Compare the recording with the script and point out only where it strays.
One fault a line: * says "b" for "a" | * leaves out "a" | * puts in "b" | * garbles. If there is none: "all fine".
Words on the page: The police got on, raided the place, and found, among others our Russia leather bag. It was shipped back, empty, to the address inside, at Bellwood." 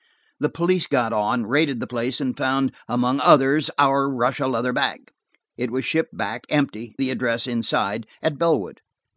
* leaves out "to"